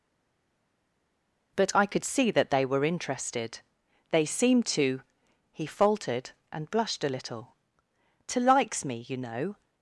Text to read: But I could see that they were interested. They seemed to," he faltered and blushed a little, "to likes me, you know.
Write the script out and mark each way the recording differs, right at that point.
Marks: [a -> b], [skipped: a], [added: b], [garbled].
But I could see that they were interested. They seemed to," he faltered and blushed a little, "to likes me, you know.